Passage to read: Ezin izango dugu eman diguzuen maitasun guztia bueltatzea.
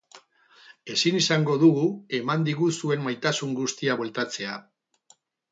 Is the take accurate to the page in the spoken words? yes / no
yes